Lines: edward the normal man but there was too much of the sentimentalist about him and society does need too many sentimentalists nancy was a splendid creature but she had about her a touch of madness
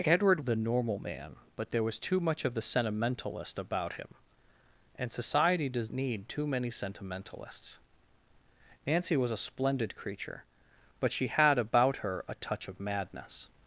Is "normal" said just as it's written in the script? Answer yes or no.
yes